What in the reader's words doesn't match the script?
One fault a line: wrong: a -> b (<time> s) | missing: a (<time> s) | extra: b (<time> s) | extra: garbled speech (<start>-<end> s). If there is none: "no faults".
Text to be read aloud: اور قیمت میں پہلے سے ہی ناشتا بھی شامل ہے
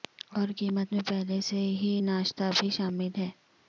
no faults